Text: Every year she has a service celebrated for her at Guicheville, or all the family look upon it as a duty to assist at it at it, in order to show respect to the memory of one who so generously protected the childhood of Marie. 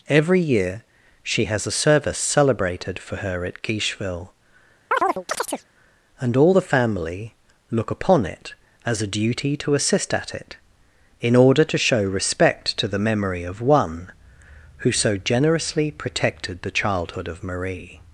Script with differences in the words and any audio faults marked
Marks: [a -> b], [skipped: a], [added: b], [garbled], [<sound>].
Every year she has a service celebrated for her at Guicheville, [chirp] [or -> and] all the family look upon it as a duty to assist at it [skipped: at it,] in order to show respect to the memory of one who so generously protected the childhood of Marie.